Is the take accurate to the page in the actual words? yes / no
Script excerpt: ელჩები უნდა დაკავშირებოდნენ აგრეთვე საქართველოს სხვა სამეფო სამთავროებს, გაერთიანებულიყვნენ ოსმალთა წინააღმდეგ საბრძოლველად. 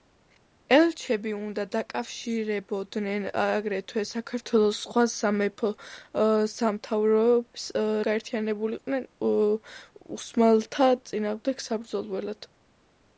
yes